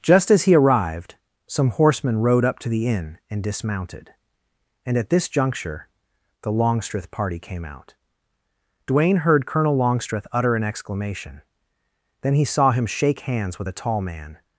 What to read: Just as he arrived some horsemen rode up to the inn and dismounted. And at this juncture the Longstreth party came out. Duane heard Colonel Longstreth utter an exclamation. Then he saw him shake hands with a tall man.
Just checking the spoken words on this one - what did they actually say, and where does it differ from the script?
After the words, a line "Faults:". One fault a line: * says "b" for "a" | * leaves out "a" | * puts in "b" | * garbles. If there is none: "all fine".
Just as he arrived some horsemen rode up to the inn and dismounted. And at this juncture the Longstreth party came out. Duane heard Colonel Longstreth utter an exclamation. Then he saw him shake hands with a tall man.
Faults:
all fine